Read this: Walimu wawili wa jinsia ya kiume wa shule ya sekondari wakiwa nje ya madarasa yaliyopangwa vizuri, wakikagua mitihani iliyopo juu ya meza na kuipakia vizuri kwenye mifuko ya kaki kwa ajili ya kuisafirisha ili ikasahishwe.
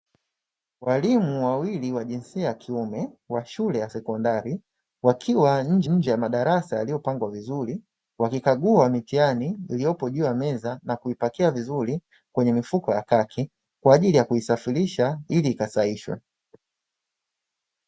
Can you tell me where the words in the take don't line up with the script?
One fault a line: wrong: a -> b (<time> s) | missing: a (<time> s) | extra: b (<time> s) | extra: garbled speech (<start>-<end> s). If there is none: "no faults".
extra: nje (5.8 s)